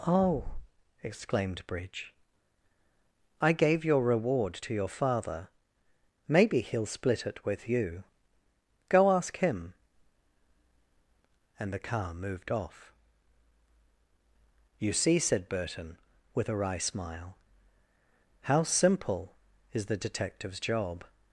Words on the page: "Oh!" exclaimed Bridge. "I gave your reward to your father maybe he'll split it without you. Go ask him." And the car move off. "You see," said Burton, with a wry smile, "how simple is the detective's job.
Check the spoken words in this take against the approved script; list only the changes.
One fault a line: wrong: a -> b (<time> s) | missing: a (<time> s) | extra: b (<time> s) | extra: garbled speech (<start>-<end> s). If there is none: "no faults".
wrong: without -> with (7.4 s)
wrong: move -> moved (12.1 s)